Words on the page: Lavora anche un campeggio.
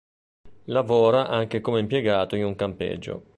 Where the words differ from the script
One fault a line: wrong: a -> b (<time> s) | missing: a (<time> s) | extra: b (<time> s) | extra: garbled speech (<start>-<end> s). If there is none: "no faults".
extra: come impiegato in (1.6 s)